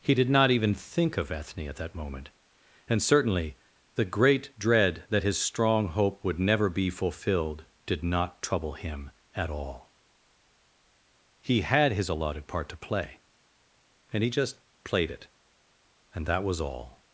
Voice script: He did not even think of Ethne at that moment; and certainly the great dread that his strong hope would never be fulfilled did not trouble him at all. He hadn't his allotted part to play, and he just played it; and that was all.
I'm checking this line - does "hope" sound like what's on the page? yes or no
yes